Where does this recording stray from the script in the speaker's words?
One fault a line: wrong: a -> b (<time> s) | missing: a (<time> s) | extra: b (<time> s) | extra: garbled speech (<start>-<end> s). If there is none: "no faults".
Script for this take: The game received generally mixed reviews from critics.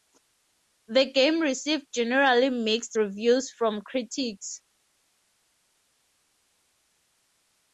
no faults